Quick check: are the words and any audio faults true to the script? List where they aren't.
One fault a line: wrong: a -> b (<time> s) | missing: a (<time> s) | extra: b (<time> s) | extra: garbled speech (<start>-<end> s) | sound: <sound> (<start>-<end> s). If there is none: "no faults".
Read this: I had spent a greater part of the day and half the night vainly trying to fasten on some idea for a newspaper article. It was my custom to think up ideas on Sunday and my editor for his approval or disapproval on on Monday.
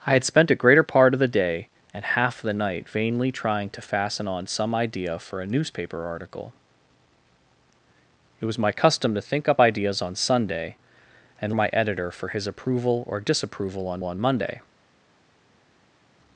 no faults